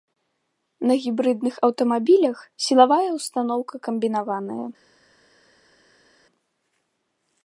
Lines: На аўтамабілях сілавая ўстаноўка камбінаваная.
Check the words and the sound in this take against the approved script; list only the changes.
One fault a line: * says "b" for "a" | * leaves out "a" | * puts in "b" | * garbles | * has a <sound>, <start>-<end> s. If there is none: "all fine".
* puts in "гібрыдных"